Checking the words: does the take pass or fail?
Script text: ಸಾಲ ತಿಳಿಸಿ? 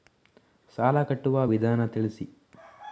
fail